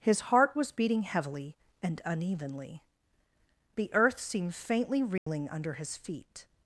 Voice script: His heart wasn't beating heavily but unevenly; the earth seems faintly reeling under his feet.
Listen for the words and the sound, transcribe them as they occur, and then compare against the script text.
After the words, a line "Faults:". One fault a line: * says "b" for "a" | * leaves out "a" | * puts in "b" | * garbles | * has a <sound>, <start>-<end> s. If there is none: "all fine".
His heart was beating heavily and unevenly; the earth seemed faintly reeling under his feet.
Faults:
* says "was" for "wasn't"
* says "and" for "but"
* says "seemed" for "seems"
* has a dropout, 5.2-5.3 s